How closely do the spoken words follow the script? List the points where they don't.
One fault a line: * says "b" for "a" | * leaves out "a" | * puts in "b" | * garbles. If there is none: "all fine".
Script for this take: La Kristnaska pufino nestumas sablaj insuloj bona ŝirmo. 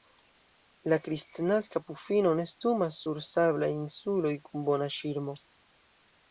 * puts in "sur"
* puts in "kun"